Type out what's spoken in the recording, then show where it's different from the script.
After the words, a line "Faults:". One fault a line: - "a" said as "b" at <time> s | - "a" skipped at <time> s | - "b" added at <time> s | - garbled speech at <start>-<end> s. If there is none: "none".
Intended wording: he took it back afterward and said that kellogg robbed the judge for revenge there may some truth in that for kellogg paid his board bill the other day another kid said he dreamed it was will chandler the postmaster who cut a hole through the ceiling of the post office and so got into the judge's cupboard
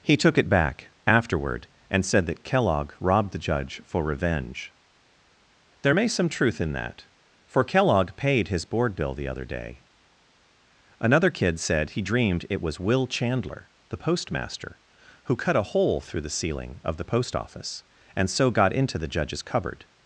he took it back afterward and said that kellogg robbed the judge for revenge there may some truth in that for kellogg paid his board bill the other day another kid said he dreamed it was will chandler the postmaster who cut a hole through the ceiling of the post office and so got into the judge's cupboard
Faults:
none